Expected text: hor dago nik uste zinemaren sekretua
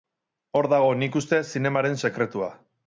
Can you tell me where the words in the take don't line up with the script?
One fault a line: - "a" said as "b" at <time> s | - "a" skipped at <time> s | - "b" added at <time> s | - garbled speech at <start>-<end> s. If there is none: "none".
none